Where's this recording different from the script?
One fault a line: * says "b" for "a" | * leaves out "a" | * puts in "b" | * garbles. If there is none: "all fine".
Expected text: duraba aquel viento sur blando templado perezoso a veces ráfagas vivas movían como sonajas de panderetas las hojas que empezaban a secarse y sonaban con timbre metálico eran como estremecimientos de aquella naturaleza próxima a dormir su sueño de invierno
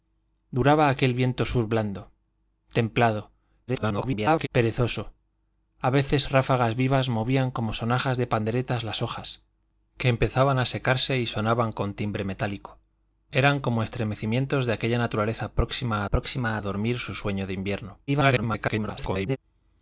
* garbles
* puts in "próxima"
* garbles